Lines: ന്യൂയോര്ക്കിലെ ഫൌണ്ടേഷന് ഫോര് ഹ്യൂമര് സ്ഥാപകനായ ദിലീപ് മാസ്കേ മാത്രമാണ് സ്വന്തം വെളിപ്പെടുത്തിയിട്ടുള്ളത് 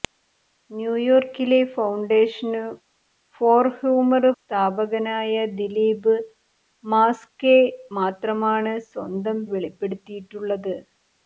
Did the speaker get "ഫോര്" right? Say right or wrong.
right